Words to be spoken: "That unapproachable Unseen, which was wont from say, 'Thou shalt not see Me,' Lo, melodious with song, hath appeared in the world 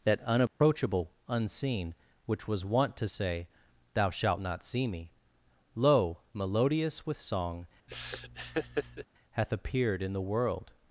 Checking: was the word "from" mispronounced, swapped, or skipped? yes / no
yes